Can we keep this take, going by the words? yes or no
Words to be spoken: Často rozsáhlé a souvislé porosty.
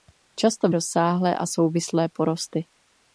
yes